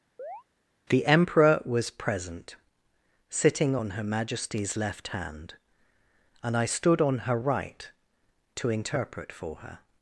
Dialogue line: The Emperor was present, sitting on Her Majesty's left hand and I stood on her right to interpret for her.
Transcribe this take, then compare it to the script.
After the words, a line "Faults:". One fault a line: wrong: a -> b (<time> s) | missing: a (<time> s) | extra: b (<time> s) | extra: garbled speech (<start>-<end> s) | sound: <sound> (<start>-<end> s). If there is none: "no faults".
The Emperor was present, sitting on Her Majesty's left hand and I stood on her right to interpret for her.
Faults:
sound: chirp (0.2-0.4 s)